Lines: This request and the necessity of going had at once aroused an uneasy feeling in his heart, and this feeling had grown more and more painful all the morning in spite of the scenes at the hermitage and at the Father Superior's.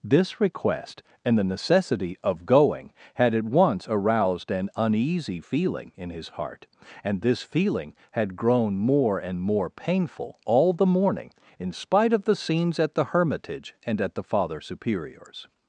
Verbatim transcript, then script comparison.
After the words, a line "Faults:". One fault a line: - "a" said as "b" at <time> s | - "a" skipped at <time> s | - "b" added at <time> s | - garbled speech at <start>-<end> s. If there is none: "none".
This request and the necessity of going had at once aroused an uneasy feeling in his heart, and this feeling had grown more and more painful all the morning in spite of the scenes at the hermitage and at the Father Superior's.
Faults:
none